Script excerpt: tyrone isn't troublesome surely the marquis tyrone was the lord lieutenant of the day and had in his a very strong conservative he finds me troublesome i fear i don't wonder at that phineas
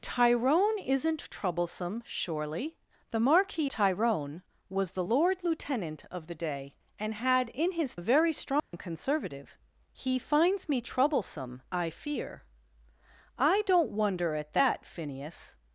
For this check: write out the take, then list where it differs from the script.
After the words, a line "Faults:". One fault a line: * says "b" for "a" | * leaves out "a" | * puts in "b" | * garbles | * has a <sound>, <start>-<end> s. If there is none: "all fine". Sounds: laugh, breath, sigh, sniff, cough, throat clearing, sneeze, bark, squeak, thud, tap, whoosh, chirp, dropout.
tyrone isn't troublesome surely the marquis tyrone was the lord lieutenant of the day and had in his a very strong conservative he finds me troublesome i fear i don't wonder at that phineas
Faults:
* has a dropout, 8.6-8.7 s